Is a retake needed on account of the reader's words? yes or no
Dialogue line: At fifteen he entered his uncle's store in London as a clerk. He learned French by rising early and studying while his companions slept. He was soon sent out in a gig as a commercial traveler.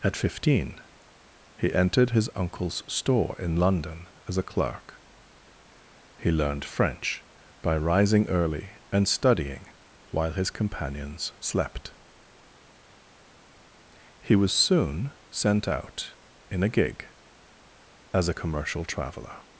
no